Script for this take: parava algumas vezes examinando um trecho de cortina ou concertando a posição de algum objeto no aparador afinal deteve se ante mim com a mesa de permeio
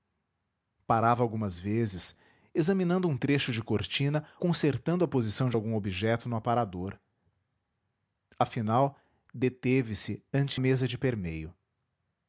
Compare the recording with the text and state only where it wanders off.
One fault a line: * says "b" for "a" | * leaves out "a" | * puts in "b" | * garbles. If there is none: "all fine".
* leaves out "ou"
* leaves out "mim com"